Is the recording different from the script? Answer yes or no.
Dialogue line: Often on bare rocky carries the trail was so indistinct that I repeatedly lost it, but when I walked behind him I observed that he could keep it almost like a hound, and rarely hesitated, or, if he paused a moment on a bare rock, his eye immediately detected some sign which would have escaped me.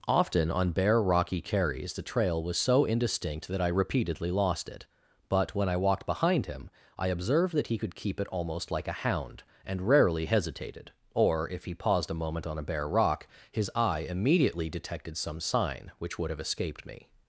no